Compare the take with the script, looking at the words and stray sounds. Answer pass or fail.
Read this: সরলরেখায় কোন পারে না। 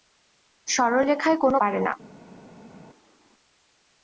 pass